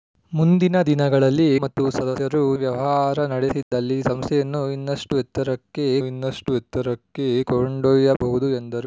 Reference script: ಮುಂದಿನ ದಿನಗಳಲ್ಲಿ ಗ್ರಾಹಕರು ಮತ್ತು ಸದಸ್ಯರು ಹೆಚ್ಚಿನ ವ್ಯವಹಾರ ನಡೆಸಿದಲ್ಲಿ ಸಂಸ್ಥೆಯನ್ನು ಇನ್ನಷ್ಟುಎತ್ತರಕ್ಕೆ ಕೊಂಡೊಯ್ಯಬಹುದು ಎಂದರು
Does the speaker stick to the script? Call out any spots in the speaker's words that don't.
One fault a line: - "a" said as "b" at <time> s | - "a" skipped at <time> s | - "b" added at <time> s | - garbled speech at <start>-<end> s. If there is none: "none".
- "ಗ್ರಾಹಕರು" skipped at 1.5 s
- "ಹೆಚ್ಚಿನ" skipped at 2.6 s
- "ಇನ್ನಷ್ಟುಎತ್ತರಕ್ಕೆ" added at 6.0 s